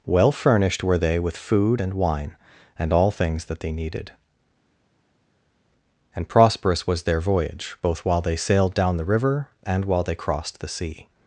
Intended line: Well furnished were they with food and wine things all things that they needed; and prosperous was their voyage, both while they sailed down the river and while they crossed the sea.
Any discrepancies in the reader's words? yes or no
yes